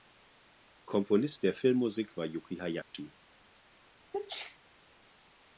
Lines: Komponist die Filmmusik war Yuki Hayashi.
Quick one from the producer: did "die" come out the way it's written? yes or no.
no